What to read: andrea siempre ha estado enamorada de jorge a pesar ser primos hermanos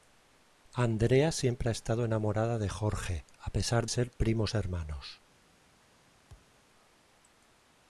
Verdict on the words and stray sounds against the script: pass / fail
fail